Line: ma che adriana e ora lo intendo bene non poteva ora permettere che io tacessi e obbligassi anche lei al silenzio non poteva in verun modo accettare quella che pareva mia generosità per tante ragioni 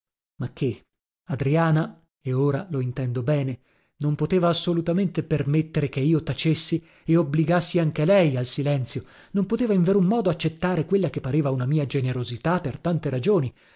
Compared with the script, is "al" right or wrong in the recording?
right